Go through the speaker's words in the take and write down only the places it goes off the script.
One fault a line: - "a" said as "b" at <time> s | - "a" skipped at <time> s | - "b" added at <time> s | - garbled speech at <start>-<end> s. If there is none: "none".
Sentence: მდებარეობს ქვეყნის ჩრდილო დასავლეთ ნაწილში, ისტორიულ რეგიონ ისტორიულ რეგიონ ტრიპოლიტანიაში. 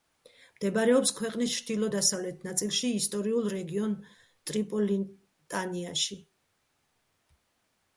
- "ისტორიულ რეგიონ" skipped at 4.0 s